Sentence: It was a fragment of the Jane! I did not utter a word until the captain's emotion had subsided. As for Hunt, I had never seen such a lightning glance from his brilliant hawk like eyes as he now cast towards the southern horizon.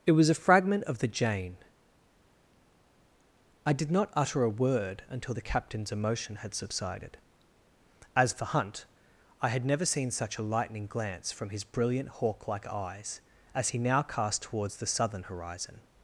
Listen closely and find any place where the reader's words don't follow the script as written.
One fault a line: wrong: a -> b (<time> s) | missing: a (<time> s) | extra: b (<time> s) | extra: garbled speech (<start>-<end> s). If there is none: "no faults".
no faults